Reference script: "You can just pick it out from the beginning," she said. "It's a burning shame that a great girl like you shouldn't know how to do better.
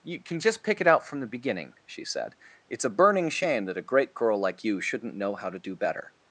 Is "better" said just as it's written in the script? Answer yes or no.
yes